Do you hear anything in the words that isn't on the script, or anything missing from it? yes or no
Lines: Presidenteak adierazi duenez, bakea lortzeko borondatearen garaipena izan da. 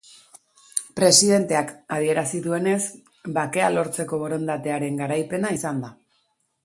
no